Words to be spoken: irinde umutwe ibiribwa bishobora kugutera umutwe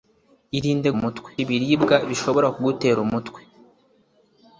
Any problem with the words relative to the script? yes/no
no